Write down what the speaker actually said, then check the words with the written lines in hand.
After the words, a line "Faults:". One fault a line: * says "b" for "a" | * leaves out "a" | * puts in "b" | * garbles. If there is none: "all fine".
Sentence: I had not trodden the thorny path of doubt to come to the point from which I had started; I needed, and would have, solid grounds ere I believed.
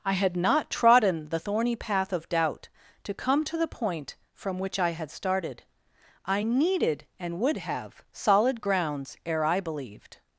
I had not trodden the thorny path of doubt to come to the point from which I had started; I needed, and would have, solid grounds ere I believed.
Faults:
all fine